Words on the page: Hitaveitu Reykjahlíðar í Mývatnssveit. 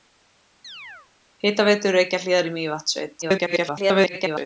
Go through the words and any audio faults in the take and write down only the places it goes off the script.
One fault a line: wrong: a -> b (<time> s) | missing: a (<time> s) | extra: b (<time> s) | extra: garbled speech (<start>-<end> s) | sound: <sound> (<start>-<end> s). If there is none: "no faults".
sound: chirp (0.6-1.1 s)
extra: garbled speech (3.2-4.5 s)